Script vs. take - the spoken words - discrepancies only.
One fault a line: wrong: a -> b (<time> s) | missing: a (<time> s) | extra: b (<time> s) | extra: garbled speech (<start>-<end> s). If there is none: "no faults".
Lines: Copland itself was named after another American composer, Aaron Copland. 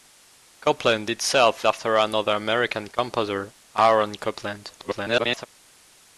missing: was named (1.7 s)
extra: garbled speech (4.8-5.5 s)